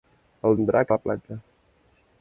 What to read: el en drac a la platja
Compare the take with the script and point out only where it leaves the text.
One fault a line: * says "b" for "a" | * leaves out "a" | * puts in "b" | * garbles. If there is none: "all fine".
all fine